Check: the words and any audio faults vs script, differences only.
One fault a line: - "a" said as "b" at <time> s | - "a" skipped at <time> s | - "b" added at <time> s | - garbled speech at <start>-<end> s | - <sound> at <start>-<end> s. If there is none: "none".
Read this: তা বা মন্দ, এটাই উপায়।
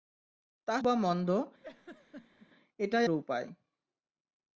- laugh at 1.6-2.5 s